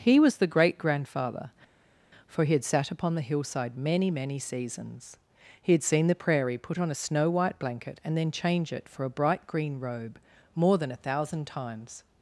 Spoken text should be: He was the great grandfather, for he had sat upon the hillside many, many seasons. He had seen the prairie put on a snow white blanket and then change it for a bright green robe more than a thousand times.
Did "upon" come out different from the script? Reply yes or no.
no